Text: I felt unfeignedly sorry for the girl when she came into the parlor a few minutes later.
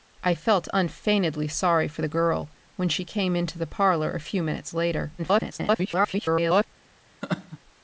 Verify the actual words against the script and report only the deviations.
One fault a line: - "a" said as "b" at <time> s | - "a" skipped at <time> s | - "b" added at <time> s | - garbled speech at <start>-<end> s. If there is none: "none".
- garbled speech at 5.2-6.7 s